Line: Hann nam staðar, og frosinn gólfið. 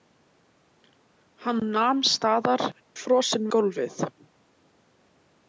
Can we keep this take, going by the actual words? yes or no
yes